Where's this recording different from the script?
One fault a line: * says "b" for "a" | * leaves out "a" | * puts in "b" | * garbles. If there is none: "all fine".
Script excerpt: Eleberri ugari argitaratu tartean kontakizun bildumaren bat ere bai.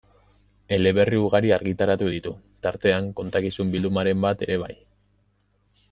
* puts in "ditu"